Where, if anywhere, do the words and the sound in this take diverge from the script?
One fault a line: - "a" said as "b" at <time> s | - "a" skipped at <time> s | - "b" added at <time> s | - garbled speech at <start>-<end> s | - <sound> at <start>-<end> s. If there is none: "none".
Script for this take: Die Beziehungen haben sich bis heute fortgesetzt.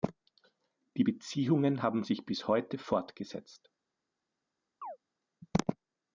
- chirp at 4.8-5.0 s